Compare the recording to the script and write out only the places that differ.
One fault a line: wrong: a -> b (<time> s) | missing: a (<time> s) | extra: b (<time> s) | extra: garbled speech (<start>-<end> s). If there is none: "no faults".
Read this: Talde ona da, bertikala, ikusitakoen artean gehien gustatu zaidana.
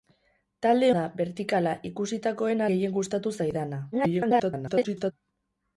missing: ona (0.9 s)
missing: artean (2.7 s)
extra: garbled speech (3.9-5.1 s)